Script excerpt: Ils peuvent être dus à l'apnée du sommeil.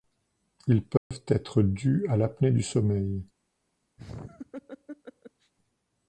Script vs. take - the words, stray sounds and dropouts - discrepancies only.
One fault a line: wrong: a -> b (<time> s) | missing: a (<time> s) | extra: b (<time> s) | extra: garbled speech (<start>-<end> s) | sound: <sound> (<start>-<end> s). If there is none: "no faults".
sound: dropout (1.0-1.1 s)
sound: laugh (4.0-5.5 s)